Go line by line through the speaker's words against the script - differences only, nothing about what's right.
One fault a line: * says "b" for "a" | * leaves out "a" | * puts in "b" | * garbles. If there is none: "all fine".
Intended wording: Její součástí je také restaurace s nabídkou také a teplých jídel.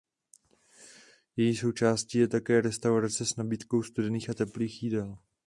* says "studených" for "také"